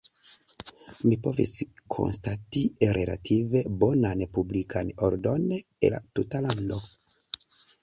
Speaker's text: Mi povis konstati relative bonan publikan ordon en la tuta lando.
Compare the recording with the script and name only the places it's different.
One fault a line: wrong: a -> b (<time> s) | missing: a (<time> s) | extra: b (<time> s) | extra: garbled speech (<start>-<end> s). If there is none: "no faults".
missing: en (5.5 s)